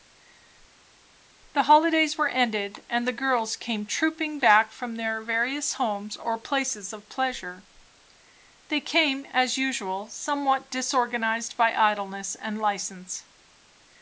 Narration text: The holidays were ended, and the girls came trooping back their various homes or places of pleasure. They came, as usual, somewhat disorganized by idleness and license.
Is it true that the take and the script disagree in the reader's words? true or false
true